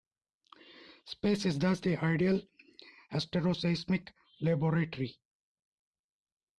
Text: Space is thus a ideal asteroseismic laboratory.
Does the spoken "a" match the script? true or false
false